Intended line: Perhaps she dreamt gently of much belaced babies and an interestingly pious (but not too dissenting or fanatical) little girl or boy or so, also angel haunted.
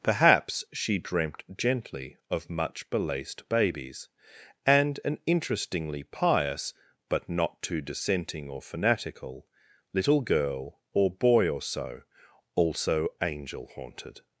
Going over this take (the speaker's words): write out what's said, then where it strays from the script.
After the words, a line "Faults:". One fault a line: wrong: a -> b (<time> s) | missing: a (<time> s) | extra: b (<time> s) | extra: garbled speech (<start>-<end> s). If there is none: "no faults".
Perhaps she dreamt gently of much belaced babies and an interestingly pious (but not too dissenting or fanatical) little girl or boy or so, also angel haunted.
Faults:
no faults